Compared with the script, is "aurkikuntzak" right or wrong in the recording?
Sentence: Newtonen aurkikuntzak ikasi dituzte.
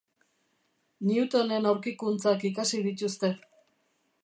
right